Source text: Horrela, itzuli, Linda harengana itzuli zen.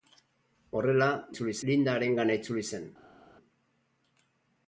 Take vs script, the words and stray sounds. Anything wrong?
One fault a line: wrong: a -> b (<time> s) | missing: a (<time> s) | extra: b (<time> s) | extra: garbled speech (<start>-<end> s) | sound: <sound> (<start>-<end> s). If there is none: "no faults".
no faults